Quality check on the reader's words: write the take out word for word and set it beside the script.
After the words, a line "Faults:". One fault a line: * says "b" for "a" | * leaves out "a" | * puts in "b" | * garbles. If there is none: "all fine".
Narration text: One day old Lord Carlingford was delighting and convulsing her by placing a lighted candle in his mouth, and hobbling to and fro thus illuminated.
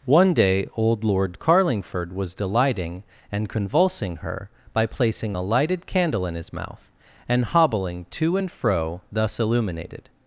One day old Lord Carlingford was delighting and convulsing her by placing a lighted candle in his mouth, and hobbling to and fro thus illuminated.
Faults:
all fine